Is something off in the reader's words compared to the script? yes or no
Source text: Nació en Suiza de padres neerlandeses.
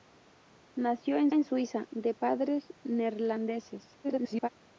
yes